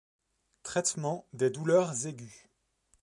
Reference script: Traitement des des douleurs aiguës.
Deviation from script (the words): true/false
true